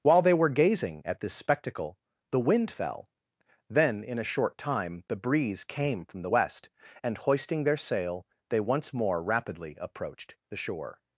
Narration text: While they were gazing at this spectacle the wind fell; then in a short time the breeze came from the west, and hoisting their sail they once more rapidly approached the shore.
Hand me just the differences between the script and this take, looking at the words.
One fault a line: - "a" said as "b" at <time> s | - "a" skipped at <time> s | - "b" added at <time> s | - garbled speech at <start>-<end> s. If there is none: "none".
none